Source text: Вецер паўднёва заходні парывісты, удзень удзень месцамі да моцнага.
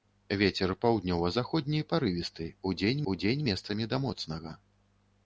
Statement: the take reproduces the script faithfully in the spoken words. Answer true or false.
true